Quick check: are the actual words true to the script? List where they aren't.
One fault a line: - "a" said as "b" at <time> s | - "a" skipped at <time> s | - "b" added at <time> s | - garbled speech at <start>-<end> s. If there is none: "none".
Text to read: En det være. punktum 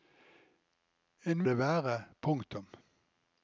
none